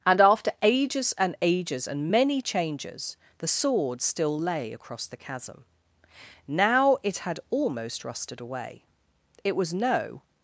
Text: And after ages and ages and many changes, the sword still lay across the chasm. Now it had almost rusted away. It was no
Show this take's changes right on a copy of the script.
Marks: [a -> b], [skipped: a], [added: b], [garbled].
And after ages and ages and many changes, the sword still lay across the chasm. Now it had almost rusted away. It was no